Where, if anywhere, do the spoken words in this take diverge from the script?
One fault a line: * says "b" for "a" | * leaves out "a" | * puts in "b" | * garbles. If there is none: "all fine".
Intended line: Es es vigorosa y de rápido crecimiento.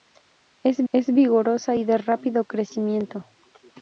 all fine